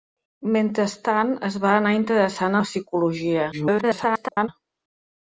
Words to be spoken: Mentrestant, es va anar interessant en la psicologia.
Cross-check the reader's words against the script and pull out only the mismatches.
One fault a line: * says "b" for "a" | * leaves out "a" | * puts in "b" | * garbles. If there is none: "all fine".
* leaves out "en"
* garbles